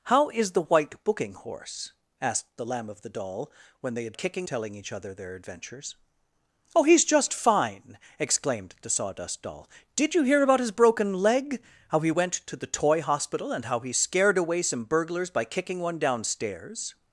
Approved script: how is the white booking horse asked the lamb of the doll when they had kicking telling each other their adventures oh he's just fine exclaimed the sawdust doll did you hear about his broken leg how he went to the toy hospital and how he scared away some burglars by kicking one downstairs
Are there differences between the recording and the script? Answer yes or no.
no